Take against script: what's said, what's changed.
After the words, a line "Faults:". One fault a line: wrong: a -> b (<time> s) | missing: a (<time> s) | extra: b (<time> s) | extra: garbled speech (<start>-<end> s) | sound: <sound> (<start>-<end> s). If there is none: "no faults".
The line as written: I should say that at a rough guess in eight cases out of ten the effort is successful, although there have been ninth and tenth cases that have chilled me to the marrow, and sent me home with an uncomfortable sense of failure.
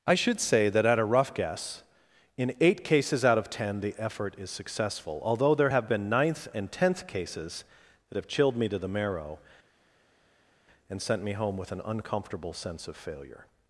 I should say that at a rough guess in eight cases out of ten the effort is successful, although there have been ninth and tenth cases that have chilled me to the marrow, and sent me home with an uncomfortable sense of failure.
Faults:
no faults